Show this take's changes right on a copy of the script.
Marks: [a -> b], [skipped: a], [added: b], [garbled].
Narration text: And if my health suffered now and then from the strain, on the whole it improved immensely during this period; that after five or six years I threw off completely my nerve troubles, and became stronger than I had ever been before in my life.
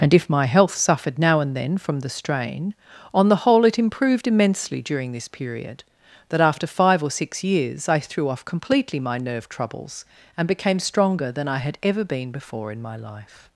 And if my health suffered now and then from the strain, on the whole it improved immensely during this period; that after five or six years I threw off completely my nerve troubles, and became stronger than I had ever been before in my life.